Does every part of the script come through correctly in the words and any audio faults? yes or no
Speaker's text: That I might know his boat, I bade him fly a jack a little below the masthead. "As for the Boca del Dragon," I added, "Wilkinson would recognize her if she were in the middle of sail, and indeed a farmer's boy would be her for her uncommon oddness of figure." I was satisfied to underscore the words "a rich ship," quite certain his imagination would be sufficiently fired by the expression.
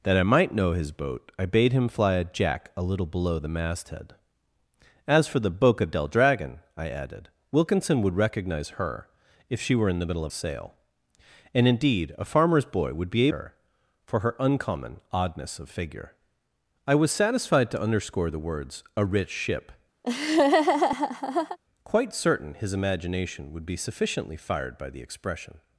no